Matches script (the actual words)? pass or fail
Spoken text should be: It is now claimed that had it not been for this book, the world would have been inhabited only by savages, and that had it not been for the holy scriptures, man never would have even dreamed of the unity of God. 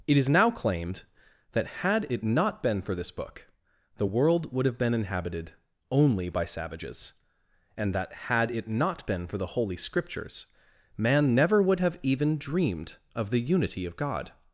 pass